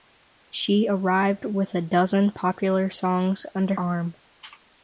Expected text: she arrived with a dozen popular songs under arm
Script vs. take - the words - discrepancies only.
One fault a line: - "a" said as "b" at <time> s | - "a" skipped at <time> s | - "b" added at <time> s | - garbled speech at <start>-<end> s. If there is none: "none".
none